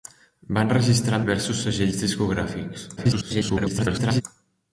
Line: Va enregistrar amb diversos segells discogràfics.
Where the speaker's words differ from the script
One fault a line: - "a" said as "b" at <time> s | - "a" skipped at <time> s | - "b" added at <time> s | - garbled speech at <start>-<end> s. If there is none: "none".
- "amb" skipped at 1.2 s
- garbled speech at 3.0-4.2 s